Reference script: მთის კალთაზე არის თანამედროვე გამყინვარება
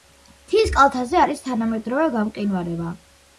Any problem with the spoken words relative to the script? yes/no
no